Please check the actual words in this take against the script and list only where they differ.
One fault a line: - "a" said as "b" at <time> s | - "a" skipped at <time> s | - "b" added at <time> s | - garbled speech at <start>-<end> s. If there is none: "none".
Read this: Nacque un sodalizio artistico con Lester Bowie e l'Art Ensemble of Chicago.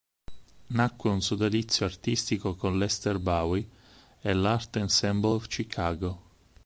none